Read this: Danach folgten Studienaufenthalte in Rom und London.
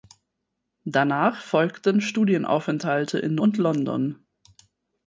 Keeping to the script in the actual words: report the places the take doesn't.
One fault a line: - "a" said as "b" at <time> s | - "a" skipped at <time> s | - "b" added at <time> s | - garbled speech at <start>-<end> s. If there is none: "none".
- "Rom" skipped at 3.4 s